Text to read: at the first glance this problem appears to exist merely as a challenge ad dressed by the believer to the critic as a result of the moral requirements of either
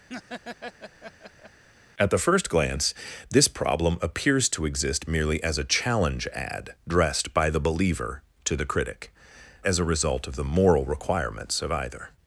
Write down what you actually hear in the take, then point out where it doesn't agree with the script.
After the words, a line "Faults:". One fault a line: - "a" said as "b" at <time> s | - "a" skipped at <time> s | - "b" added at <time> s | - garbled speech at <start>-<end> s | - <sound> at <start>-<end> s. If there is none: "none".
at the first glance this problem appears to exist merely as a challenge ad dressed by the believer to the critic as a result of the moral requirements of either
Faults:
- laugh at 0.1-1.6 s